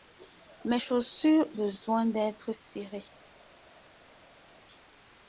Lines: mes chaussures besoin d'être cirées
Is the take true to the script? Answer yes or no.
yes